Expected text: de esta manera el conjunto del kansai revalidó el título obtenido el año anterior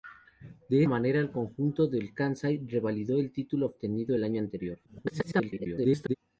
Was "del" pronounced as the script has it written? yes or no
yes